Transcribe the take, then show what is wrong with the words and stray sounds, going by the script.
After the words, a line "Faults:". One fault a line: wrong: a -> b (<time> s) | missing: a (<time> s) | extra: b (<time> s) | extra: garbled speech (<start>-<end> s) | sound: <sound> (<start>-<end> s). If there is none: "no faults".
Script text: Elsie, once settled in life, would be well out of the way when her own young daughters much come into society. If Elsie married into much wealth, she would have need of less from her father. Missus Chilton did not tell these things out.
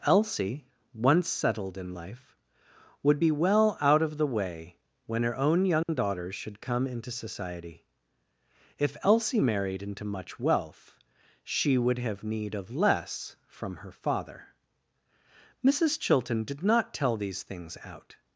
Elsie, once settled in life, would be well out of the way when her own young daughters should come into society. If Elsie married into much wealth, she would have need of less from her father. Missus Chilton did not tell these things out.
Faults:
sound: dropout (5.8-5.9 s)
wrong: much -> should (6.4 s)